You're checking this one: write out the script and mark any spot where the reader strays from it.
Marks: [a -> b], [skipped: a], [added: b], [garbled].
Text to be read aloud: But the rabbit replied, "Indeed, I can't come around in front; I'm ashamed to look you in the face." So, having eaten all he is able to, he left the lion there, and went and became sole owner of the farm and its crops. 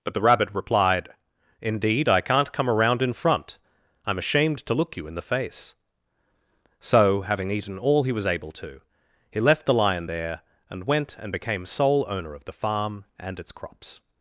But the rabbit replied, "Indeed, I can't come around in front; I'm ashamed to look you in the face." So, having eaten all he [is -> was] able to, he left the lion there, and went and became sole owner of the farm and its crops.